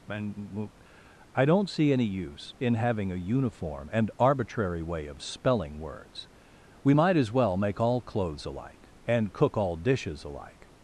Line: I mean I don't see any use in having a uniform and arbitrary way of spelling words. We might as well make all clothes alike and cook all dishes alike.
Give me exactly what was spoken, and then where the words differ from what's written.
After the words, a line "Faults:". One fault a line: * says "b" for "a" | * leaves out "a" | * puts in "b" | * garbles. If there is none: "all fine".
and I don't see any use in having a uniform and arbitrary way of spelling words. We might as well make all clothes alike and cook all dishes alike.
Faults:
* says "and" for "I mean"